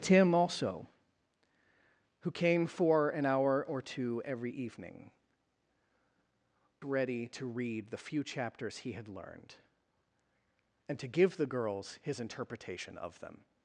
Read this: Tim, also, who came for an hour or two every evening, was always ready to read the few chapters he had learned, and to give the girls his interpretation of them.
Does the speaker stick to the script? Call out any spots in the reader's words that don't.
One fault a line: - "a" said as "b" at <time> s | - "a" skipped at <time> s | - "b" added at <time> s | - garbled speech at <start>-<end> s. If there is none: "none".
- "was always" skipped at 5.1 s